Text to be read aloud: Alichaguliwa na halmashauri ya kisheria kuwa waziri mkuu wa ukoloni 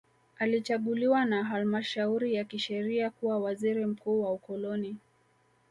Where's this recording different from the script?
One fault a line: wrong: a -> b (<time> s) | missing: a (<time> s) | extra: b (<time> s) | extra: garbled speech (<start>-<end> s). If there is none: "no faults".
no faults